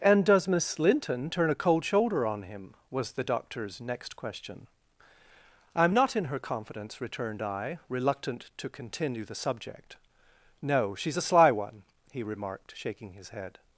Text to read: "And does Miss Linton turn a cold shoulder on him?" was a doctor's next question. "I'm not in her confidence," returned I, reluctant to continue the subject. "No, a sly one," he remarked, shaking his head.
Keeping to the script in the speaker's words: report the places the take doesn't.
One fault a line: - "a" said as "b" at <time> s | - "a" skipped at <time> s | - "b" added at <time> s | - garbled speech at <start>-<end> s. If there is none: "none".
- "a" said as "the" at 3.1 s
- "she's" added at 10.9 s